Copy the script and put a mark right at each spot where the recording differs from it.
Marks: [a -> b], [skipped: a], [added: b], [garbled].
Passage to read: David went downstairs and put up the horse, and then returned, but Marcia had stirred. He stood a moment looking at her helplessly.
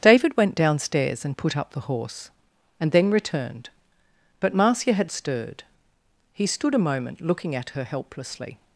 David went downstairs and put up the horse, and then returned, but Marcia had stirred. He stood a moment looking at her helplessly.